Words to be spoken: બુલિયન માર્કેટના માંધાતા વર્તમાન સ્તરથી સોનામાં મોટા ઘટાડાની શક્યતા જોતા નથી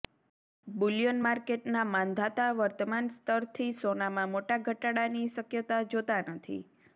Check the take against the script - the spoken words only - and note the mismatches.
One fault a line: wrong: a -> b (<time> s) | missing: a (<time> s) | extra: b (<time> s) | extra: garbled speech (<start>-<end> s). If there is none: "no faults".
no faults